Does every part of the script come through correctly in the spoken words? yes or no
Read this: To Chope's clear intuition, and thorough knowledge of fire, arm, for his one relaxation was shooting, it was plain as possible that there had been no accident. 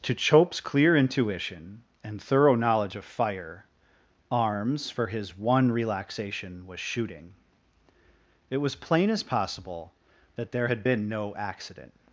no